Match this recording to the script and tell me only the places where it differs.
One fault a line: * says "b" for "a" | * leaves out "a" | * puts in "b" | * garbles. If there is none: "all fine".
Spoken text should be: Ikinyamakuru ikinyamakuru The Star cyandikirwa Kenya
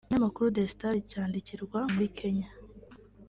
* leaves out "ikinyamakuru"
* puts in "muri"